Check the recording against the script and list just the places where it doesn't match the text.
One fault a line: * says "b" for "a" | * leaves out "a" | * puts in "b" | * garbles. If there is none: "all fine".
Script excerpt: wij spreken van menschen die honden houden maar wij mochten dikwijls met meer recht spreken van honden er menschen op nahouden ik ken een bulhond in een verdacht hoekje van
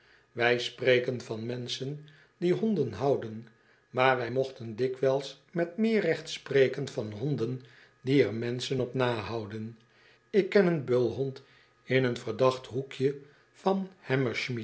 * puts in "die"